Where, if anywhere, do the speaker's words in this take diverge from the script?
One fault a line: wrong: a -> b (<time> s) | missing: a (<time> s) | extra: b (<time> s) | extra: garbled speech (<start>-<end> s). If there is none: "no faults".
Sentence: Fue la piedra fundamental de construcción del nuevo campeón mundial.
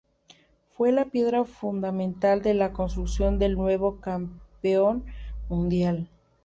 extra: la (2.5 s)